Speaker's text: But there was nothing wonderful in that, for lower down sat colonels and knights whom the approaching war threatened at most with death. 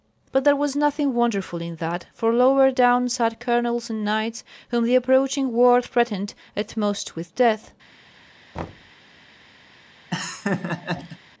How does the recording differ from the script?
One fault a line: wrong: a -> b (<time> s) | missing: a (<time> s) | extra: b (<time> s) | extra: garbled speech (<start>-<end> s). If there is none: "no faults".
no faults